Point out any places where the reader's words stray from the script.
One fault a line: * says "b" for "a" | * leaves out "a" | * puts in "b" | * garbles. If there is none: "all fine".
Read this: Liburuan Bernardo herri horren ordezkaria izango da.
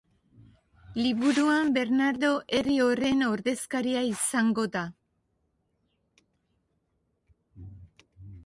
all fine